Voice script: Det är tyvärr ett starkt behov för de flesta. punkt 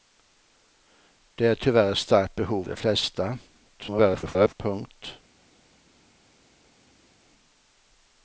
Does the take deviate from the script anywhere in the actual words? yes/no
yes